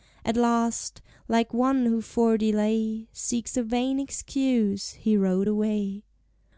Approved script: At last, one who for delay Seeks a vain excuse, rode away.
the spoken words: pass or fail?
fail